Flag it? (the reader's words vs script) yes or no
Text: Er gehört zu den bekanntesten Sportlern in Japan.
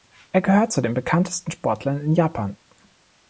no